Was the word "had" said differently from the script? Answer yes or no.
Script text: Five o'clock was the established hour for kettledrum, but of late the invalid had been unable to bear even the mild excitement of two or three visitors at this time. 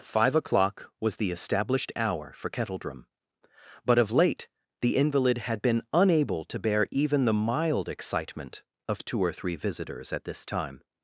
no